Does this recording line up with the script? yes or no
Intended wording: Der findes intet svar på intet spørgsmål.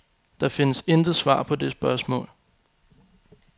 no